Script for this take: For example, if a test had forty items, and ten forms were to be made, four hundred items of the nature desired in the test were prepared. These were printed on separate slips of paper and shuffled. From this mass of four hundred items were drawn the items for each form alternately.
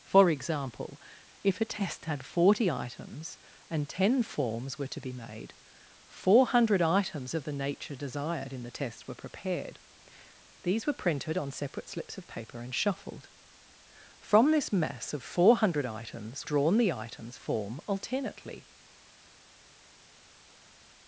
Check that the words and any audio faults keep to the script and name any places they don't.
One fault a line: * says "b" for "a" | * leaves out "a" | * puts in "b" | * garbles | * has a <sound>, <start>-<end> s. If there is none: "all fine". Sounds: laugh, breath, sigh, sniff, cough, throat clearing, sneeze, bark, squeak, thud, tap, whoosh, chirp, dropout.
* leaves out "were"
* leaves out "for each"